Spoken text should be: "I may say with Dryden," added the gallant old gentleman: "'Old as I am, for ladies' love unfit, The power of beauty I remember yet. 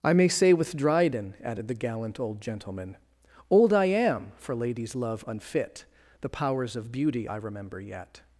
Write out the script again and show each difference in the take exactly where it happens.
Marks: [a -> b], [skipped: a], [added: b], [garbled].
"I may say with Dryden," added the gallant old gentleman: "'Old [skipped: as] I am, for ladies' love unfit, The [power -> powers] of beauty I remember yet.